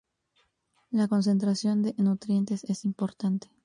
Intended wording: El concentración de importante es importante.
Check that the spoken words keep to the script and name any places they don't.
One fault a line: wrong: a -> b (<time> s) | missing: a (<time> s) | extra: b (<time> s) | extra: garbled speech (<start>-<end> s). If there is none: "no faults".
wrong: El -> La (0.9 s)
wrong: importante -> nutrientes (2.0 s)